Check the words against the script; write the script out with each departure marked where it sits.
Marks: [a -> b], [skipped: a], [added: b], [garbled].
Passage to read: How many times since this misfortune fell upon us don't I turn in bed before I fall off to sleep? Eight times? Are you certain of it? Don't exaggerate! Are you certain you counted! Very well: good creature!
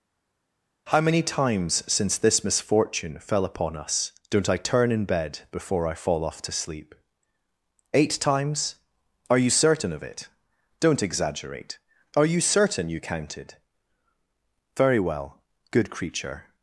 How many times since this misfortune fell upon us don't I turn in bed before I fall off to sleep? Eight times? Are you certain of it? Don't exaggerate! Are you certain you counted! Very well: good creature!